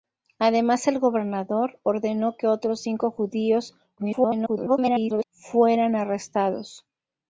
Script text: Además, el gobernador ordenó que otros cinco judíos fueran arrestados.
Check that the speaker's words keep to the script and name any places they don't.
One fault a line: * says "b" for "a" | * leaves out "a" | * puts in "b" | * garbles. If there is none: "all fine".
* garbles